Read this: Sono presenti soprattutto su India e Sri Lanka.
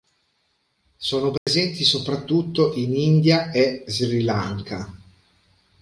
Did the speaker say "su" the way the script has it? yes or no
no